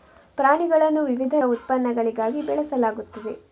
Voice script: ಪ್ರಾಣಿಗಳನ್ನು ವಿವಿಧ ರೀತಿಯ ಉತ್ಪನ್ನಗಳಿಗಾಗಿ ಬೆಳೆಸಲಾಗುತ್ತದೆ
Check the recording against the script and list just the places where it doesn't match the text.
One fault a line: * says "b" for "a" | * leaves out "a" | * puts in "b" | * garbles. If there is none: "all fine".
* leaves out "ರೀತಿಯ"